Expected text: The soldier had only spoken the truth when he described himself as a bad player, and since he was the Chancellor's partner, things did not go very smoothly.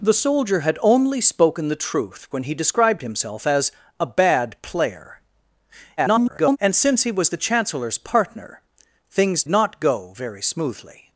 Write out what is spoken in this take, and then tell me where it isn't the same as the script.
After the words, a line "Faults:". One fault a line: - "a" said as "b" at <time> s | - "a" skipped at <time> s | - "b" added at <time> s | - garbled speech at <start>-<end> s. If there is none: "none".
The soldier had only spoken the truth when he described himself as a bad player, [garbled] and since he was the Chancellor's partner, things not go very smoothly.
Faults:
- garbled speech at 6.0-6.6 s
- "did" skipped at 9.4 s